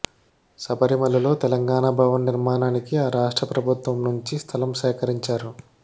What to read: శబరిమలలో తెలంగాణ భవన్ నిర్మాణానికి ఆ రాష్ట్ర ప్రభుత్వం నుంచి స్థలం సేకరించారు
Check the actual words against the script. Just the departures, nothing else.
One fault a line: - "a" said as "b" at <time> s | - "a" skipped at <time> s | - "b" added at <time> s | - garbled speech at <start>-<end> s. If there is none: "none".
none